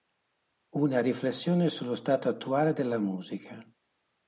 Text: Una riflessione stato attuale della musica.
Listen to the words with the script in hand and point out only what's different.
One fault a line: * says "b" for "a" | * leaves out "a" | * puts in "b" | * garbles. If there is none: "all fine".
* puts in "sullo"